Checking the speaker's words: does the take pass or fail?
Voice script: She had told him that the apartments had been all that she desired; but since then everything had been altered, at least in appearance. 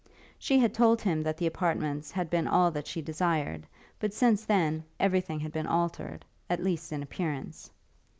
pass